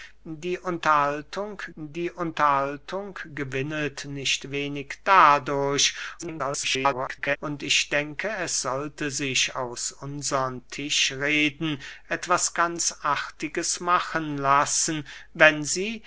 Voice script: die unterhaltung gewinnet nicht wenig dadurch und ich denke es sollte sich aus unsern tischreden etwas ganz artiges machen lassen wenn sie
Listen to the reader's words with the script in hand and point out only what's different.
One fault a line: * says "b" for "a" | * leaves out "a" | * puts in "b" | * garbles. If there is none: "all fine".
* puts in "die unterhaltung"
* garbles